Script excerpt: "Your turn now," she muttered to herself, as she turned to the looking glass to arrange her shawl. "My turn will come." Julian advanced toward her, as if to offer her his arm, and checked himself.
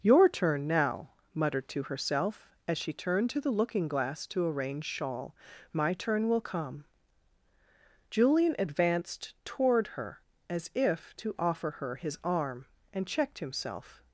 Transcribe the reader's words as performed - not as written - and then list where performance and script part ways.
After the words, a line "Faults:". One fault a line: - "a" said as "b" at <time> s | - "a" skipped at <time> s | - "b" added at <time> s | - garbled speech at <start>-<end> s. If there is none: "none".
"Your turn now," muttered to herself, as she turned to the looking glass to arrange shawl. "My turn will come." Julian advanced toward her, as if to offer her his arm, and checked himself.
Faults:
- "she" skipped at 1.1 s
- "her" skipped at 4.8 s